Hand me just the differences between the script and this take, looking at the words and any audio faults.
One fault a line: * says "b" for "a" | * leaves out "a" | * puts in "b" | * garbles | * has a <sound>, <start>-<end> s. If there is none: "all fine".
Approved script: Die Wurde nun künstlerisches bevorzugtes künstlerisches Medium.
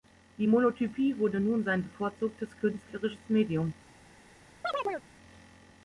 * puts in "Monotypie"
* says "sein" for "künstlerisches"
* has a chirp, 4.6-5.1 s